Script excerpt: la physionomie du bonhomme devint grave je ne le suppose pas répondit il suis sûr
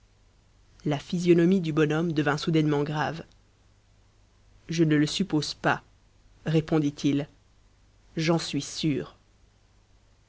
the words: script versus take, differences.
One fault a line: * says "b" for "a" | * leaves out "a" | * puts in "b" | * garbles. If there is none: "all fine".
* puts in "soudainement"
* puts in "j'en"